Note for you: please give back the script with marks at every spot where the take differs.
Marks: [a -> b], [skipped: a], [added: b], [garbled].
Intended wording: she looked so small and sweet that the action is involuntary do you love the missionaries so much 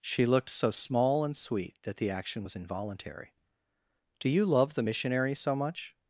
she looked so small and sweet that the action [is -> was] involuntary do you love the missionaries so much